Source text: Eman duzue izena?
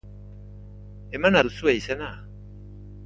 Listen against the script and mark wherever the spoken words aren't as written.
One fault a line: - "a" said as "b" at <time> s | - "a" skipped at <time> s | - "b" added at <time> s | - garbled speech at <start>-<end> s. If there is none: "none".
none